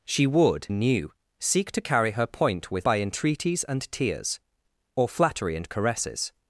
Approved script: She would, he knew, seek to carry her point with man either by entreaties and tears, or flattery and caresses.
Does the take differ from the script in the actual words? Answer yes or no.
yes